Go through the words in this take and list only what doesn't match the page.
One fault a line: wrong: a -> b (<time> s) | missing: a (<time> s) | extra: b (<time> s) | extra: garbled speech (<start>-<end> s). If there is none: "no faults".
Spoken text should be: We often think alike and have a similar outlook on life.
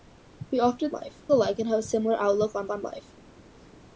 wrong: think -> life (0.9 s)
extra: on (2.7 s)